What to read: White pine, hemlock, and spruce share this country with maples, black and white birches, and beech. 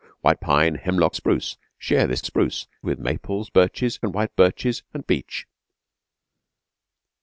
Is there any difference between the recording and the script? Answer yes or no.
yes